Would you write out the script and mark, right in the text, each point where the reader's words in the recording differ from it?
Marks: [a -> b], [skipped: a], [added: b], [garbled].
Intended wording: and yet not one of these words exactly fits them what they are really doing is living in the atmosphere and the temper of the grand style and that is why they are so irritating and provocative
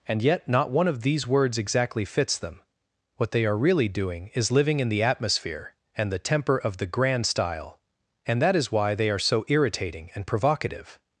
and yet not one of these words exactly fits them what they are really doing is living in the atmosphere and the temper of the grand style and that is why they are so irritating and provocative